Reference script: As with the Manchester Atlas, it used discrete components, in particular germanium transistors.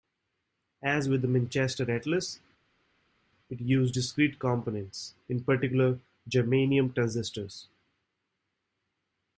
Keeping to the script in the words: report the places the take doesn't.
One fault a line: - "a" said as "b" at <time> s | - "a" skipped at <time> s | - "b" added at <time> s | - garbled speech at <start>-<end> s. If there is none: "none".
none